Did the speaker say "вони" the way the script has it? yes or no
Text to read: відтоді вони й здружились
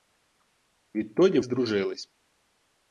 no